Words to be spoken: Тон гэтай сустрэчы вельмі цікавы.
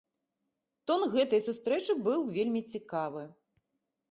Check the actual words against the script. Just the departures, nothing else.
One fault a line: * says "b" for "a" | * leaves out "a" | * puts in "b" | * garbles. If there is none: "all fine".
* puts in "быў"